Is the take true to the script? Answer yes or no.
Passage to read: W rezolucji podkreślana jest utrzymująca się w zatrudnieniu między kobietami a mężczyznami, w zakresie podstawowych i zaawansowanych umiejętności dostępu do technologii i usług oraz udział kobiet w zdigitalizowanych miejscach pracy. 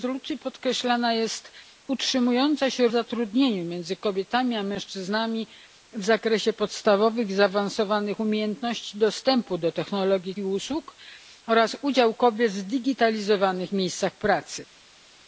yes